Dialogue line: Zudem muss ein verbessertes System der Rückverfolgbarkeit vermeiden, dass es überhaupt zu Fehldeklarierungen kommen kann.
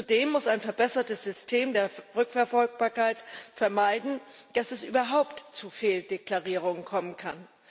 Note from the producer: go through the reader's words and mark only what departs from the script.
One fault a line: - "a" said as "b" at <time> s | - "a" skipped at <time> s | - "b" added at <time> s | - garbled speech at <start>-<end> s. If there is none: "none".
none